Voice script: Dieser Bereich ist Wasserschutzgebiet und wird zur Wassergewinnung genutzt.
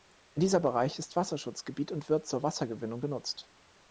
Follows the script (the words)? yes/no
yes